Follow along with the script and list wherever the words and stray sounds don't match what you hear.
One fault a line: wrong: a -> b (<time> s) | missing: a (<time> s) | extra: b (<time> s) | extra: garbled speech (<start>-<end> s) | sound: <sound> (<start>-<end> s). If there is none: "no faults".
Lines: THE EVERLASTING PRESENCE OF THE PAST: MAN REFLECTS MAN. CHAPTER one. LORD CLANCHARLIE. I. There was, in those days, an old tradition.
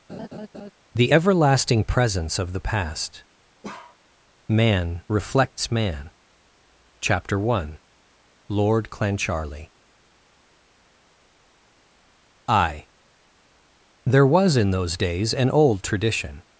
sound: laugh (0.1-0.7 s)
sound: bark (3.6-4.0 s)